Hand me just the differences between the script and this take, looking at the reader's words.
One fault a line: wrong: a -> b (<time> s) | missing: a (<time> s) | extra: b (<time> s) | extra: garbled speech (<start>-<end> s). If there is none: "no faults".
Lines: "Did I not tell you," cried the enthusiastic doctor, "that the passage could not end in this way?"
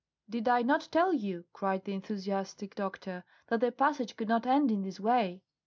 no faults